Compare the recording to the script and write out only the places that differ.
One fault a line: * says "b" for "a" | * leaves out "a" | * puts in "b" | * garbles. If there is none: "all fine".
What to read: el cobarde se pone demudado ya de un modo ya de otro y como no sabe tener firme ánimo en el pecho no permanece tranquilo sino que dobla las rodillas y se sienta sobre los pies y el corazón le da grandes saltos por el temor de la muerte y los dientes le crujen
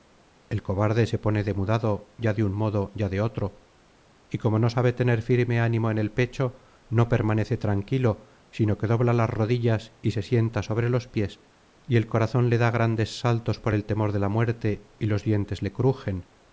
all fine